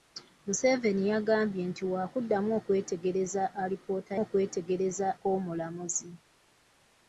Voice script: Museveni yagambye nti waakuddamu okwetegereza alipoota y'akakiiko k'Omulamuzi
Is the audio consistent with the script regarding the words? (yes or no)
no